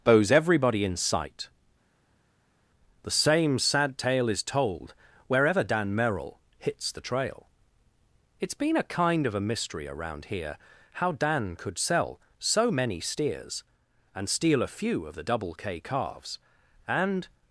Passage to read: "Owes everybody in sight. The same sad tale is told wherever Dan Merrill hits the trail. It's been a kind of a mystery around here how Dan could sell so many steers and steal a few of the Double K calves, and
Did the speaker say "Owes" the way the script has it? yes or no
no